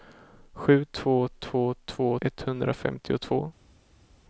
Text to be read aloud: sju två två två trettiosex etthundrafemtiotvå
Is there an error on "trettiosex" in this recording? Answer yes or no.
yes